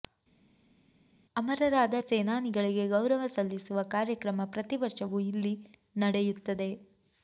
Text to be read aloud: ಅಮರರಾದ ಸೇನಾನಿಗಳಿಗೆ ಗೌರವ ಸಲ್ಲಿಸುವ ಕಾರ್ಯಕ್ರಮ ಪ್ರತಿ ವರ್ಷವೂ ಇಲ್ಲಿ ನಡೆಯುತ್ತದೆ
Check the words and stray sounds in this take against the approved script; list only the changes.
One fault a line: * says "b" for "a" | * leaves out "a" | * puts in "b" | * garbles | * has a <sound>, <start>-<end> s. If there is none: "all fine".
all fine